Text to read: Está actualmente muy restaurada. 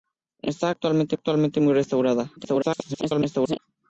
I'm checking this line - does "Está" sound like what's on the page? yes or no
yes